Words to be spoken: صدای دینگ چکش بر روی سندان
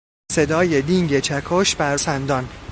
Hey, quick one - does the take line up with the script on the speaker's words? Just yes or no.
no